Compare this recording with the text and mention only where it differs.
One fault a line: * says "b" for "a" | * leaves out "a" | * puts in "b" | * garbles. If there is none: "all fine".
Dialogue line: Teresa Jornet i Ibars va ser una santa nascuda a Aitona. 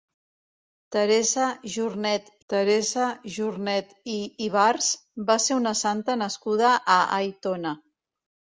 * puts in "teresa Jornet"